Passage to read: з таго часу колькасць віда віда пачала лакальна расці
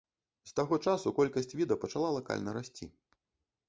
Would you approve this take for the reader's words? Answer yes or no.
no